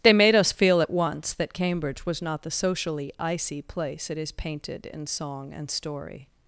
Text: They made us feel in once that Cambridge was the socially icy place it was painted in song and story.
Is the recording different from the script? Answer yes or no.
yes